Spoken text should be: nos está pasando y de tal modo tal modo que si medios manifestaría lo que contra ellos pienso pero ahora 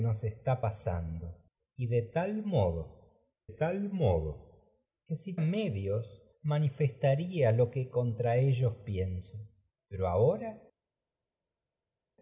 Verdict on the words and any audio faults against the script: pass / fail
pass